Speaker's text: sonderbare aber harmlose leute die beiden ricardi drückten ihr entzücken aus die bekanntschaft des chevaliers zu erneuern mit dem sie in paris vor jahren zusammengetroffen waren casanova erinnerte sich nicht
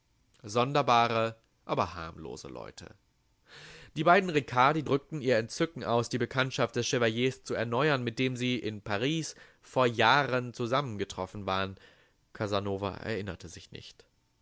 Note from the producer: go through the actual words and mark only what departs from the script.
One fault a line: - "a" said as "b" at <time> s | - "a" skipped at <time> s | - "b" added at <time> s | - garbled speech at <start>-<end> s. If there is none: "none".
none